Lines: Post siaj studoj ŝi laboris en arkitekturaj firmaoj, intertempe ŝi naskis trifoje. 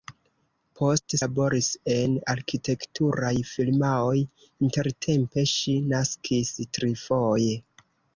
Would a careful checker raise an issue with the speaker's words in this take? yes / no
yes